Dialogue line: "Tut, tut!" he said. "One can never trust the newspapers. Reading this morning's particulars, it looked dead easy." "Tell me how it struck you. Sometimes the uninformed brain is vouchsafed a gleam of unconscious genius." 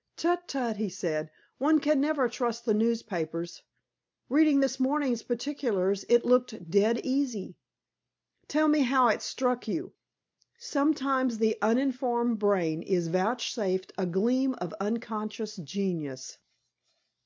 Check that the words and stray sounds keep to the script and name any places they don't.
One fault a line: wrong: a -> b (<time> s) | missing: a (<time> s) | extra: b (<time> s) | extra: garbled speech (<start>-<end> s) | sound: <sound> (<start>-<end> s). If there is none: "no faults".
no faults